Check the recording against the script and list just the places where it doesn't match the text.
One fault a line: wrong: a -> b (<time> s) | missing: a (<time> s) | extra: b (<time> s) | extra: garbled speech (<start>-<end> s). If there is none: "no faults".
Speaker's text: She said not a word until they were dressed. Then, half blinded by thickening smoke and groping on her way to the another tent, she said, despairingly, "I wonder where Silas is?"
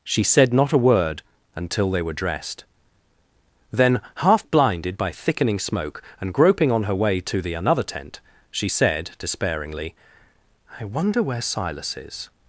no faults